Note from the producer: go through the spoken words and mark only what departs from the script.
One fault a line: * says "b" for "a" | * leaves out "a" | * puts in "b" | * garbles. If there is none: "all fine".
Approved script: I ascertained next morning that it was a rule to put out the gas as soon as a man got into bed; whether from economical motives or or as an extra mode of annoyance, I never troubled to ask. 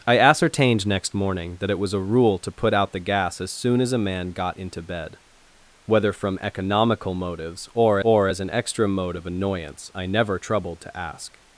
all fine